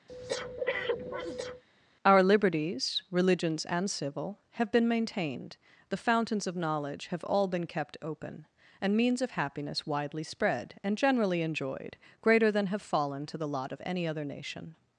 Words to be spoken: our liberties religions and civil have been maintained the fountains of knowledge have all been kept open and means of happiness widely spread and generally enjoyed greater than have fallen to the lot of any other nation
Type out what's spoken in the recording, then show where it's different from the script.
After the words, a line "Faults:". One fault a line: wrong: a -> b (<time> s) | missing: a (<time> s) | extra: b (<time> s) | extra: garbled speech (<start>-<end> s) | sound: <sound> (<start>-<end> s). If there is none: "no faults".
our liberties religions and civil have been maintained the fountains of knowledge have all been kept open and means of happiness widely spread and generally enjoyed greater than have fallen to the lot of any other nation
Faults:
sound: breath (0.1-1.6 s)